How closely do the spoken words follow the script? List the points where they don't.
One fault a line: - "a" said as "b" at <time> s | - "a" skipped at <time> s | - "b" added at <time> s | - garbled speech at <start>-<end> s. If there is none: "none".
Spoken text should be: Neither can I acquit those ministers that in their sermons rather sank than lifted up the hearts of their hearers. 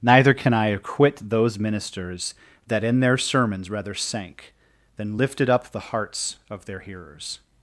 none